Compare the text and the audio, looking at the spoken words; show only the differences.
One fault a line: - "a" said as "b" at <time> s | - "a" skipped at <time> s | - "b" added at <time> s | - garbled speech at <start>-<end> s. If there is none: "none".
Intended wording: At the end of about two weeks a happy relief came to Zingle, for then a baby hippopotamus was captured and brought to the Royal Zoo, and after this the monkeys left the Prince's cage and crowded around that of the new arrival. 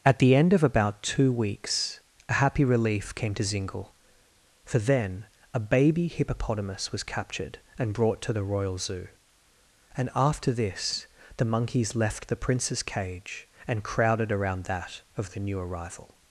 none